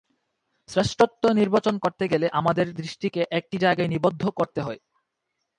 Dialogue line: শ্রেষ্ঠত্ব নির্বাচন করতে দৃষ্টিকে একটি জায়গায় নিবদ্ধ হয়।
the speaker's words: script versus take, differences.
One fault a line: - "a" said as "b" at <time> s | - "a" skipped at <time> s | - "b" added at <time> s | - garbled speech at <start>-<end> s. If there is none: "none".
- "গেলে আমাদের" added at 2.1 s
- "করতে" added at 4.3 s